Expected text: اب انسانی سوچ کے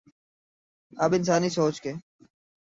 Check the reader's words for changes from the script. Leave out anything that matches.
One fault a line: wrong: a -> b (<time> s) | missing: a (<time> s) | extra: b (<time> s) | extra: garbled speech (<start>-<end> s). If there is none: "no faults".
no faults